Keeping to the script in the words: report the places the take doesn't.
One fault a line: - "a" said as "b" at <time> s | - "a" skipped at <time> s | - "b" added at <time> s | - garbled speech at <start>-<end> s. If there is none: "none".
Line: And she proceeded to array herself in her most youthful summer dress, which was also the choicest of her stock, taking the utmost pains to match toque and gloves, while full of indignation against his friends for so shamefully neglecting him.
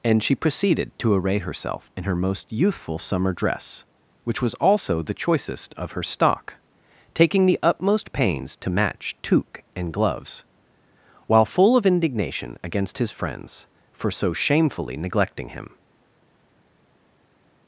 none